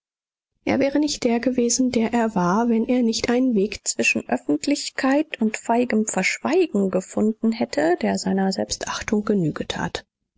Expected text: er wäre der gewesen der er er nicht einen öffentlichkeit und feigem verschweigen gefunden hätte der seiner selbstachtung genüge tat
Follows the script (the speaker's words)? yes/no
no